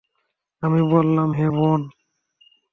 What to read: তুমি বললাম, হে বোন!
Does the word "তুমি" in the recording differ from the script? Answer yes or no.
yes